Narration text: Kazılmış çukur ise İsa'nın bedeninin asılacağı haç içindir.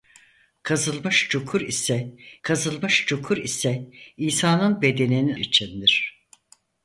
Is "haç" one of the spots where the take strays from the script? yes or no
yes